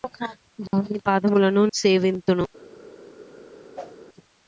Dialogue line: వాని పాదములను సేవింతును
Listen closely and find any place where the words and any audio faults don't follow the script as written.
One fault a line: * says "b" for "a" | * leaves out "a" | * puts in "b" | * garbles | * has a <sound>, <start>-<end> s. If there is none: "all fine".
* has a dropout, 0.7-0.7 s
* has a whoosh, 3.8-4.0 s